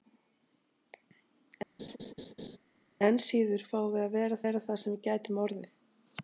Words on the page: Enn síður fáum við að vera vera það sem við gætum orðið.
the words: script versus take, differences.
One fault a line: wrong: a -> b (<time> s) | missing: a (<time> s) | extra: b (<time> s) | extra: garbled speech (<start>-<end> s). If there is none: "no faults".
no faults